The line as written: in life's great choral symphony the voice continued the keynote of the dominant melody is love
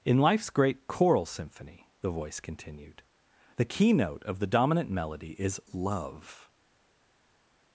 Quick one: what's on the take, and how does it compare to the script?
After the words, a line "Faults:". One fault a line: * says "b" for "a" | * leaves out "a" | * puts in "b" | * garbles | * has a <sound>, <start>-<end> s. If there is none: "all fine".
in life's great choral symphony the voice continued the keynote of the dominant melody is love
Faults:
all fine